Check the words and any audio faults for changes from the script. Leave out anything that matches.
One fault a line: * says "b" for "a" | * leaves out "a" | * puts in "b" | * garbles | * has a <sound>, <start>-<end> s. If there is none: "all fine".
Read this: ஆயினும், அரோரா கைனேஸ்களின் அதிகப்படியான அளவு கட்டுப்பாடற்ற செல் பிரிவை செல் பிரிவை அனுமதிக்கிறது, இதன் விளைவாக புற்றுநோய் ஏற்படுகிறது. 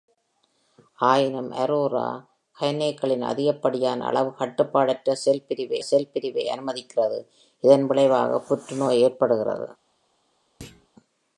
* has a thud, 10.6-10.9 s